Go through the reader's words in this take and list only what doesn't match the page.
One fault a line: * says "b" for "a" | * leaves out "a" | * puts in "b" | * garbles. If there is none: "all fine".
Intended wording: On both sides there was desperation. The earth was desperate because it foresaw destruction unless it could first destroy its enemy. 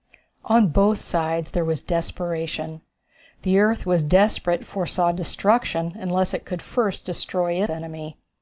* leaves out "because"
* leaves out "its"